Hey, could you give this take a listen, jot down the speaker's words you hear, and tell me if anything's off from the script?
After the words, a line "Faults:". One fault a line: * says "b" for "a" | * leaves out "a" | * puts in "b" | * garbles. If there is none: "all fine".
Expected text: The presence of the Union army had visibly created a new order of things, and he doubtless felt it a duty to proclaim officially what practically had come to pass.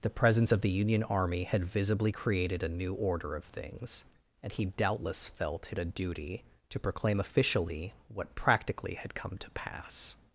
The presence of the Union army had visibly created a new order of things, and he doubtless felt it a duty to proclaim officially what practically had come to pass.
Faults:
all fine